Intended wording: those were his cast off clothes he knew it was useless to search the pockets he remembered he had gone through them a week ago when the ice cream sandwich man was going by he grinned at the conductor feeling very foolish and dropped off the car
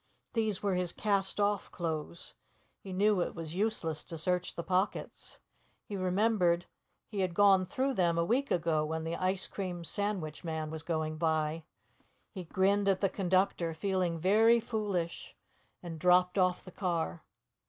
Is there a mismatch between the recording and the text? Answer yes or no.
yes